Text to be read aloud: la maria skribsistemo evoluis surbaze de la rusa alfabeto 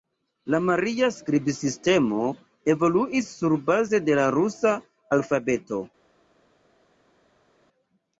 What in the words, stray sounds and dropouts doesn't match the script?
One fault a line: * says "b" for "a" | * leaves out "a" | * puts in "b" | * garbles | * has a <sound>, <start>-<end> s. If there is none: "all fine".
all fine